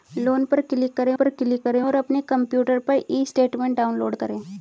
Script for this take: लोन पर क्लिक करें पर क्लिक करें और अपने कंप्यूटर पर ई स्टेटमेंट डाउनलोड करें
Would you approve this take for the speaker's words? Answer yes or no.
yes